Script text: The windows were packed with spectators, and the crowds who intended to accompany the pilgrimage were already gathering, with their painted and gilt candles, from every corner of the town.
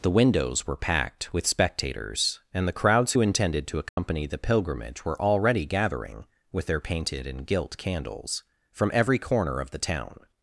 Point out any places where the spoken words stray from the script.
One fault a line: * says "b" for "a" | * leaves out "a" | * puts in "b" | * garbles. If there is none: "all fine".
all fine